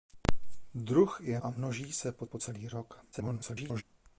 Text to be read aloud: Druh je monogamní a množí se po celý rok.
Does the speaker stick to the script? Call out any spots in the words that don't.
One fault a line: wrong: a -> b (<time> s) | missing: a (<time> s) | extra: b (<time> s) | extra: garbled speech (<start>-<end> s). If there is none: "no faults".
missing: monogamní (1.4 s)
extra: po (2.2 s)
extra: garbled speech (3.1-3.8 s)